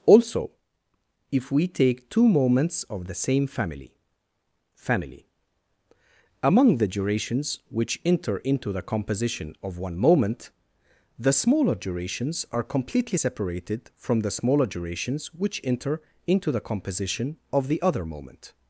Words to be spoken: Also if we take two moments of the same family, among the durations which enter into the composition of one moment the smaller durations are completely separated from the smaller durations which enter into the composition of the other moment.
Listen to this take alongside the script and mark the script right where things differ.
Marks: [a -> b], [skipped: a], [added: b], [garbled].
Also if we take two moments of the same family, [added: family] among the durations which enter into the composition of one moment the smaller durations are completely separated from the smaller durations which enter into the composition of the other moment.